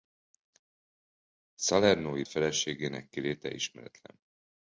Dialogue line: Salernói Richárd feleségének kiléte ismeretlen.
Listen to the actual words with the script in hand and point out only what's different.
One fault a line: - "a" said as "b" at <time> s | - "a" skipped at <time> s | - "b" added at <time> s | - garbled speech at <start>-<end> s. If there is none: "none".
- "Richárd" skipped at 2.2 s